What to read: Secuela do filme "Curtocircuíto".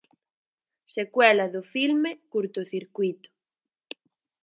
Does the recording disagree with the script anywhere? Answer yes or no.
no